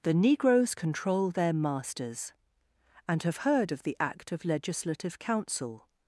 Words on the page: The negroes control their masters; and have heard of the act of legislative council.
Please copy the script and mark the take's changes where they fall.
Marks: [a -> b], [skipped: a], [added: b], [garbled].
The negroes control their masters; and have heard of the act of legislative council.